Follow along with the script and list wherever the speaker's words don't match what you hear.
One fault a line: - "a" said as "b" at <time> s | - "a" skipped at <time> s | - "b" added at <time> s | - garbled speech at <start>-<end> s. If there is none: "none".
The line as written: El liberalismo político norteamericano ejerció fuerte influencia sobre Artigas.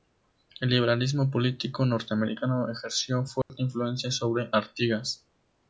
none